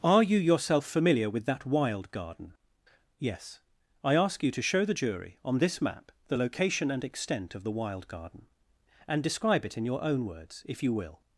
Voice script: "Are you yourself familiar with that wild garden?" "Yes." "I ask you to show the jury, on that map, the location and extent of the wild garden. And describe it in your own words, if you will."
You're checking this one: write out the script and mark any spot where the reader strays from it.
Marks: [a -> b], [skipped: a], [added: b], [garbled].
"Are you yourself familiar with that wild garden?" "Yes." "I ask you to show the jury, on [that -> this] map, the location and extent of the wild garden. And describe it in your own words, if you will."